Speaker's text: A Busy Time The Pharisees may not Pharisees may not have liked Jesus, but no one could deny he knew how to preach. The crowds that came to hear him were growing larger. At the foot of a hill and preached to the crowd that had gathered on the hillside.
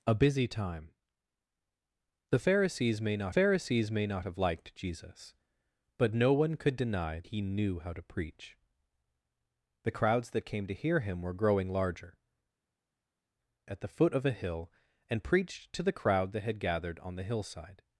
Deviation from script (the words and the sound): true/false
false